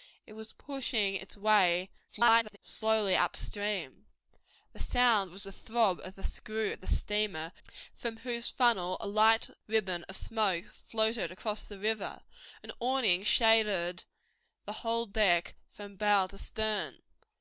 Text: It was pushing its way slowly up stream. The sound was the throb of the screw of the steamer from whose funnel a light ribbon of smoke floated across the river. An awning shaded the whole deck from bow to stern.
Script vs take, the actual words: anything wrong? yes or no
yes